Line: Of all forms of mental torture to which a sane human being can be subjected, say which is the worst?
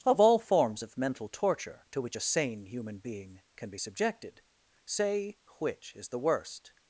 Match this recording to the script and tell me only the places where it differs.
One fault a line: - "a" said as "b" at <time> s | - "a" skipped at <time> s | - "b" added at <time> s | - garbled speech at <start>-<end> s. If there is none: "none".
none